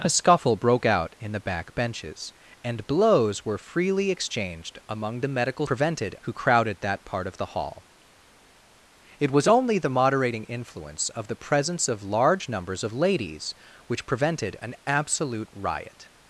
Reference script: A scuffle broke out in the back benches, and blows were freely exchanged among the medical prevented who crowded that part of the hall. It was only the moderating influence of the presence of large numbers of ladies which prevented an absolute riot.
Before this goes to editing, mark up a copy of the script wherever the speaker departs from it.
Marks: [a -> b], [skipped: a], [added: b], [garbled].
A scuffle broke out in the back benches, and blows were freely exchanged among the medical prevented who crowded that part of the hall. It was only the moderating influence of the presence of large numbers of ladies which prevented an absolute riot.